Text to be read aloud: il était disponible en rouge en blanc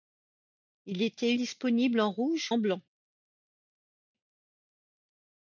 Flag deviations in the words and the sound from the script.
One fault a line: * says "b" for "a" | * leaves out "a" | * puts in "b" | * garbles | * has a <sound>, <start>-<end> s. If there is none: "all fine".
all fine